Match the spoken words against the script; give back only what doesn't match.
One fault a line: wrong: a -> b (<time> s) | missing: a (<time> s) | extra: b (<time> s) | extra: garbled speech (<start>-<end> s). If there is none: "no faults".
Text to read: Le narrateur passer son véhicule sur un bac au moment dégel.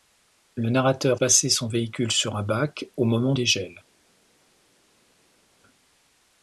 no faults